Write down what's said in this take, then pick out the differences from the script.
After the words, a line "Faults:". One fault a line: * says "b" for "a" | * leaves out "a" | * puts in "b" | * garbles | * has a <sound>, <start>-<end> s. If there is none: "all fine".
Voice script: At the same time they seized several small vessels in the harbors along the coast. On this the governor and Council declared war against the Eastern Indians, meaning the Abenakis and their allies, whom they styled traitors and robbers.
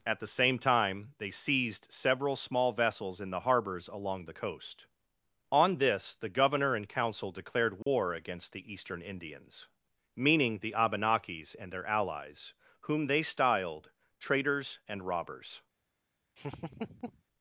At the same time they seized several small vessels in the harbors along the coast. On this the governor and Council declared war against the Eastern Indians, meaning the Abenakis and their allies, whom they styled traitors and robbers.
Faults:
* has a dropout, 7.8-7.9 s
* has a laugh, 16.4-17.2 s